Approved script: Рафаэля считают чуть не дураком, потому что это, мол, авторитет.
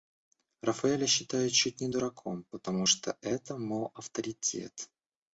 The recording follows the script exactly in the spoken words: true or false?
true